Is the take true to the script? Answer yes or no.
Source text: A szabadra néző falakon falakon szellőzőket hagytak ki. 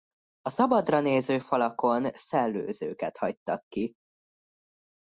no